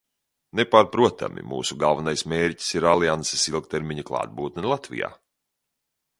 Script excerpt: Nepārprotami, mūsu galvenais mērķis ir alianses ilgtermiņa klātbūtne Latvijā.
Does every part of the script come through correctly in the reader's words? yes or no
yes